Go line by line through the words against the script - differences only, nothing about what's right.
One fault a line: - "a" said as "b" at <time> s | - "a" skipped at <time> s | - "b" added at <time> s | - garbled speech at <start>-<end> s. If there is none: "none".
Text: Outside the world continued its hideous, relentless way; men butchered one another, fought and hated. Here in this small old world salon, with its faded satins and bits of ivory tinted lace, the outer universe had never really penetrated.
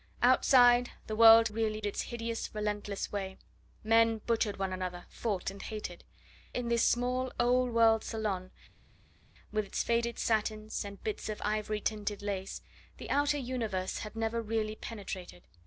- "continued" said as "really" at 1.5 s
- "Here" skipped at 6.0 s